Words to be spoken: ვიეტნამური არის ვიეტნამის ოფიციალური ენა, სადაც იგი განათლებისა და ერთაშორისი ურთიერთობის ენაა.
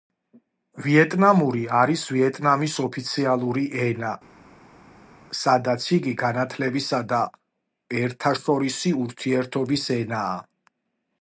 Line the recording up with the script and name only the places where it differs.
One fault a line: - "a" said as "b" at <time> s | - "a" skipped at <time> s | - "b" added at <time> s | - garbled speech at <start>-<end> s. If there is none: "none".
none